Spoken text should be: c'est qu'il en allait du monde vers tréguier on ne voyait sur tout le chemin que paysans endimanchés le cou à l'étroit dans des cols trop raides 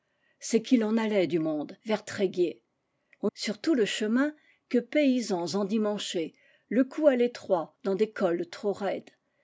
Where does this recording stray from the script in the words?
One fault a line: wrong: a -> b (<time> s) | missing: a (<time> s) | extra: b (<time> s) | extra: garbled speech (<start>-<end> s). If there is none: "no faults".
missing: ne voyait (3.3 s)